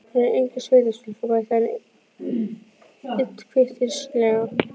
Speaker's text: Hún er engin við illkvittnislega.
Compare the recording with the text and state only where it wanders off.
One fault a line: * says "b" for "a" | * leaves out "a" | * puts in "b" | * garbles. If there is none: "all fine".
* puts in "sveitastúlka bætti hann"